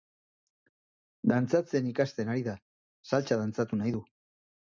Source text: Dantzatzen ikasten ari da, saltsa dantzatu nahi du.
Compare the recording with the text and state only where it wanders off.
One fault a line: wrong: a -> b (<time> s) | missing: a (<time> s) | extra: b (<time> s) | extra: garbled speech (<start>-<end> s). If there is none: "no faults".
no faults